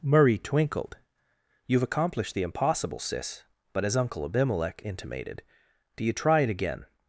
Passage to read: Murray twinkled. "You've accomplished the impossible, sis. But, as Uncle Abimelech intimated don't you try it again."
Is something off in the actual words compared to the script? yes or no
yes